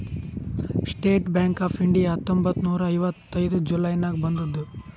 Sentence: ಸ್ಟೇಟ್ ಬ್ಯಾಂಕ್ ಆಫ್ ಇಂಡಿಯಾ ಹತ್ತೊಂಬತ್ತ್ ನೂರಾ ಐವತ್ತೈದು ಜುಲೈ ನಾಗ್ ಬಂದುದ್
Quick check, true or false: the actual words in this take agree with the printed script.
true